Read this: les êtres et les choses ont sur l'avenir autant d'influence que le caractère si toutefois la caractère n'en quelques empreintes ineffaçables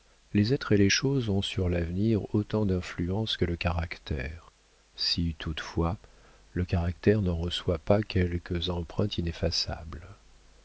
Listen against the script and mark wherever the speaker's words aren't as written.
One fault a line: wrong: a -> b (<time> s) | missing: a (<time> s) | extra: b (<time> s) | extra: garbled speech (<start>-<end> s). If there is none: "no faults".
wrong: la -> le (6.5 s)
extra: reçoit pas (7.4 s)